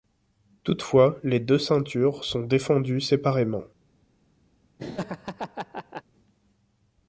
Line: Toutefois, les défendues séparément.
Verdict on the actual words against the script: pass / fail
fail